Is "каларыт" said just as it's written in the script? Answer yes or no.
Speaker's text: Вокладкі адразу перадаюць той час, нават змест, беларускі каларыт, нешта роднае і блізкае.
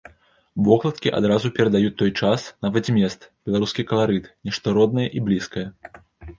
yes